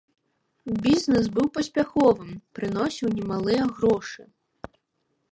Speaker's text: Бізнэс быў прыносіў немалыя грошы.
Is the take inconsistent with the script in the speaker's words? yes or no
yes